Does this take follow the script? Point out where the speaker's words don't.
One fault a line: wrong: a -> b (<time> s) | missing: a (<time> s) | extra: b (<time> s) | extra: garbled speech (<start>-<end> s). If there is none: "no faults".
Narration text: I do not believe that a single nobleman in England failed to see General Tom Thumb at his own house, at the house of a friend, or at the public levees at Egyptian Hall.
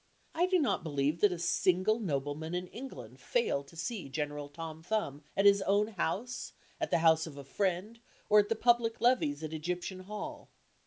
no faults